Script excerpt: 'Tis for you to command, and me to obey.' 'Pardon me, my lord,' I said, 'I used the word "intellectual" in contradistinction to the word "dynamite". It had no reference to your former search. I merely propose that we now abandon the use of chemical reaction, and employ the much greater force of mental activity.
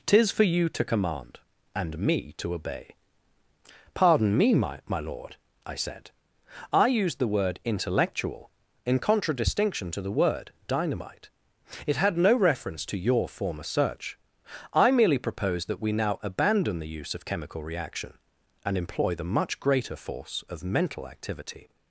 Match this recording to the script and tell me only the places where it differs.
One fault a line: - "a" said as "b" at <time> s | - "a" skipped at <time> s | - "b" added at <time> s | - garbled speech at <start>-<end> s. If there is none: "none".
- "my" added at 4.9 s